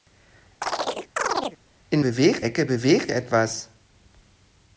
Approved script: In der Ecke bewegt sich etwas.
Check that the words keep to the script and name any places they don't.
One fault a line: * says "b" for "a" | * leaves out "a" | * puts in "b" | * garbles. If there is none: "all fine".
* says "bewegt" for "der"
* leaves out "sich"